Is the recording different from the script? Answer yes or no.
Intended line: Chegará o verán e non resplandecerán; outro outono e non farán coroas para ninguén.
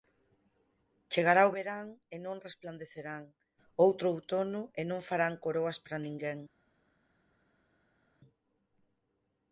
no